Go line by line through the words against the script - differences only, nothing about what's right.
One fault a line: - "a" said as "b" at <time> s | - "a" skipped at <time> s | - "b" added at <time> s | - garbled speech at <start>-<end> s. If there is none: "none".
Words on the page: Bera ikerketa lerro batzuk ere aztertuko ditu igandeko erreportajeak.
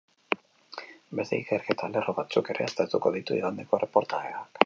- "Bera" said as "Beste" at 1.2 s